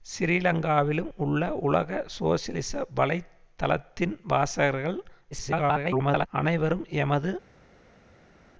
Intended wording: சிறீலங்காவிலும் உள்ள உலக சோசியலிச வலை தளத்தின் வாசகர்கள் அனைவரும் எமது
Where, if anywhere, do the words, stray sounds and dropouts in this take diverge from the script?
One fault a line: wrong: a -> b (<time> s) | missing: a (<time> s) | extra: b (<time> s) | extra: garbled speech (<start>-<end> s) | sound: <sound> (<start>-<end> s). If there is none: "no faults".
extra: garbled speech (5.3-6.3 s)